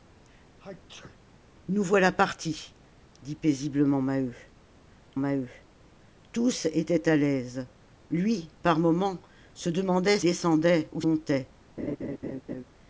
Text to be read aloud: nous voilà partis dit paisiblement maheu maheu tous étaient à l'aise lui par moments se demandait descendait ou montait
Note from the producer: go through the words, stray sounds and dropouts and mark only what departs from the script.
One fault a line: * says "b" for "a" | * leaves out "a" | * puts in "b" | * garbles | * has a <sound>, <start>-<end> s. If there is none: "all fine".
* has a sneeze, 0.6-1.2 s
* has a laugh, 11.8-12.6 s